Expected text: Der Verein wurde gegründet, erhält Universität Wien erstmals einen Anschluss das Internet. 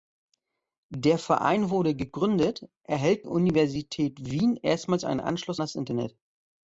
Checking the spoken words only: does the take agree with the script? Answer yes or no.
yes